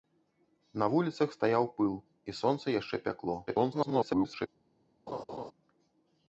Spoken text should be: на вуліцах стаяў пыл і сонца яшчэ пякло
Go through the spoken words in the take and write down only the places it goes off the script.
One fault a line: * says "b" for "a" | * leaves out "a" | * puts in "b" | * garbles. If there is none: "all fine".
* garbles